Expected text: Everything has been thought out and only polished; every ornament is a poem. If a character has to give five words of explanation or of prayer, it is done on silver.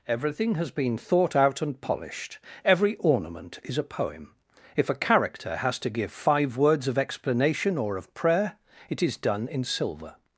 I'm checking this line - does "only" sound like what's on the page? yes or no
no